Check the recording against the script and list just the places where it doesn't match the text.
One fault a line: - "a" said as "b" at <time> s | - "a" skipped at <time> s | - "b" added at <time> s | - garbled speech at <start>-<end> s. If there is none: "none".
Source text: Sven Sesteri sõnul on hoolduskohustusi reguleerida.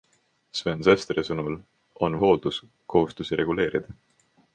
none